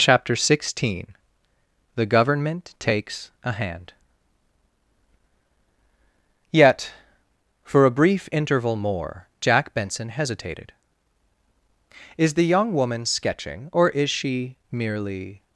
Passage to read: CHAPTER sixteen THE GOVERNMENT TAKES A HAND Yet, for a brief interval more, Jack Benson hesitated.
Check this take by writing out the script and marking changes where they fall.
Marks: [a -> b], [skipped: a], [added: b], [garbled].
CHAPTER sixteen THE GOVERNMENT TAKES A HAND Yet, for a brief interval more, Jack Benson hesitated. [added: Is the young woman sketching or is she merely]